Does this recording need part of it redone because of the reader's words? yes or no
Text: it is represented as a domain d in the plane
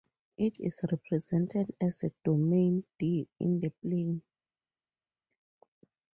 no